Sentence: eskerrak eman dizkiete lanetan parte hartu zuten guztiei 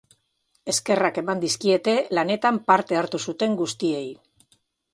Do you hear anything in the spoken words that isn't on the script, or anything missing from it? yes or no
no